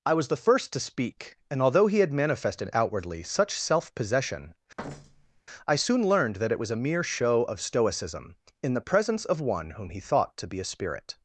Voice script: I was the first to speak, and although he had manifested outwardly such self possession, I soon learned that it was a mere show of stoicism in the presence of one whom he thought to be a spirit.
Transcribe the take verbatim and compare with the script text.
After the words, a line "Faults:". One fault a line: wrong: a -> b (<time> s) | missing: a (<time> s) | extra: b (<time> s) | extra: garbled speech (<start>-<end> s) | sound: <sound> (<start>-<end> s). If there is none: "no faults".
I was the first to speak, and although he had manifested outwardly such self possession, I soon learned that it was a mere show of stoicism in the presence of one whom he thought to be a spirit.
Faults:
sound: thud (4.8-5.4 s)